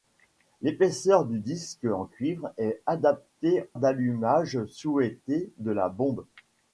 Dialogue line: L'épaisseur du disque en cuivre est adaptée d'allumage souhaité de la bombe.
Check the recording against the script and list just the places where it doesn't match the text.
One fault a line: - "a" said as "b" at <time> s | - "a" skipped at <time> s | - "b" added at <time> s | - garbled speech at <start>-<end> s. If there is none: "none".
none